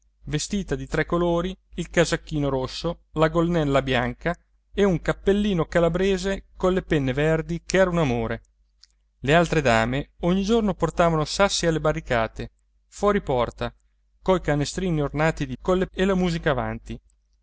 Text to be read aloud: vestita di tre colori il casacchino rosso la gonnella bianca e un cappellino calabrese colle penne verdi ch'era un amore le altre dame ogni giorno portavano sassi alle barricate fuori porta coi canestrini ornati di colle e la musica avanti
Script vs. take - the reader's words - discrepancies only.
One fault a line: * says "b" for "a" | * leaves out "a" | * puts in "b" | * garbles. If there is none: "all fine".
all fine